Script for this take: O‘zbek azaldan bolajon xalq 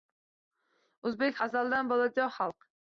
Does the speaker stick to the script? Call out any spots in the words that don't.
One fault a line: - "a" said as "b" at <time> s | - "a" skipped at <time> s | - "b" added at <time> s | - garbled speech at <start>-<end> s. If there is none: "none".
none